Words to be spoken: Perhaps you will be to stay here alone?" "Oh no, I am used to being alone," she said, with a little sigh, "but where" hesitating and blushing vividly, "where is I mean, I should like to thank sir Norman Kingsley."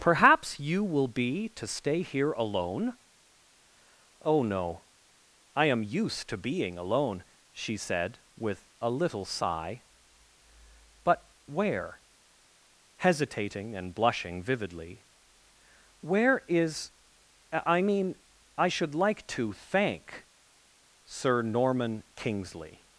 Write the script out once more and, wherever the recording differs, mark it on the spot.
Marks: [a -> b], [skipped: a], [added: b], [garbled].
Perhaps you will be to stay here alone?" "Oh no, I am used to being alone," she said, with a little sigh, "but where" hesitating and blushing vividly, "where is I mean, I should like to thank sir Norman Kingsley."